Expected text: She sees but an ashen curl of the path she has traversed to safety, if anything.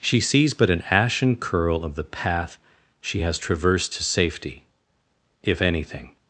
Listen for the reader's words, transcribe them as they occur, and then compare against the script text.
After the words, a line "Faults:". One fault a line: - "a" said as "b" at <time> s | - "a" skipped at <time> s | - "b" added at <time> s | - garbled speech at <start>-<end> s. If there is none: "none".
She sees but an ashen curl of the path she has traversed to safety, if anything.
Faults:
none